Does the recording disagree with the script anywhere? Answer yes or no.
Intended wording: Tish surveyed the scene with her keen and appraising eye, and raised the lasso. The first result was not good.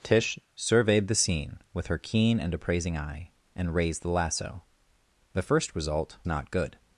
yes